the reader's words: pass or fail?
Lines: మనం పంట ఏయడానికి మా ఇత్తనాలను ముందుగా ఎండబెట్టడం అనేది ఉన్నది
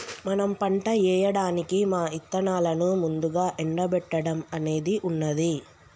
pass